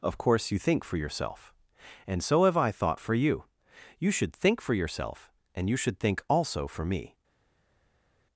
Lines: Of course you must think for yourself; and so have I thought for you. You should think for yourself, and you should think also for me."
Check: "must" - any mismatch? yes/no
yes